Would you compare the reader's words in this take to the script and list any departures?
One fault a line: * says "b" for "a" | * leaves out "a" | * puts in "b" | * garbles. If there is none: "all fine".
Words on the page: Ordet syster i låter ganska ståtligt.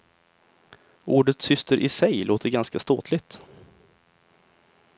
* puts in "sig"